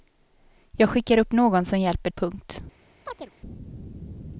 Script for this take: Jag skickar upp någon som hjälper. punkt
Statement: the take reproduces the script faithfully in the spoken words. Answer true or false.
true